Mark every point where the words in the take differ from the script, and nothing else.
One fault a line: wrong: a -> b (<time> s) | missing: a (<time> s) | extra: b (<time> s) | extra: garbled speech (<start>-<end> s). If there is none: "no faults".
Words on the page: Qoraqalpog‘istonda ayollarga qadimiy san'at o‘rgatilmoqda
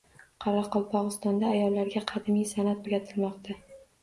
no faults